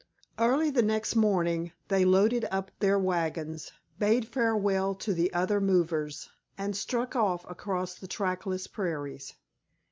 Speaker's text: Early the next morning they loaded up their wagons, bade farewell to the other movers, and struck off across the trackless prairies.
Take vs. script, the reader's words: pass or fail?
pass